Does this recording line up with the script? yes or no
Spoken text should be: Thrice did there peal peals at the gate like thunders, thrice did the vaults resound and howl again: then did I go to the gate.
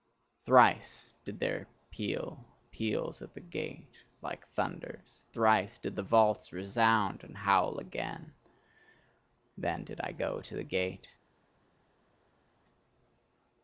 yes